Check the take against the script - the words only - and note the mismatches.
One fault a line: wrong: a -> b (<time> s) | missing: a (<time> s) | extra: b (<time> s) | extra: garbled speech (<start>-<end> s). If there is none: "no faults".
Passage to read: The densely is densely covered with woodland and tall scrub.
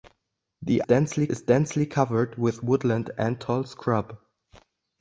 no faults